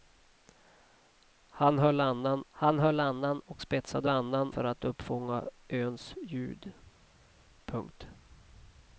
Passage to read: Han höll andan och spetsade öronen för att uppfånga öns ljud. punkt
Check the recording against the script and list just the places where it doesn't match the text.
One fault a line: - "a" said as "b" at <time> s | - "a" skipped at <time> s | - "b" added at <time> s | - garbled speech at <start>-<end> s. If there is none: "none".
- "han höll andan" added at 2.5 s
- "öronen" said as "andan" at 4.1 s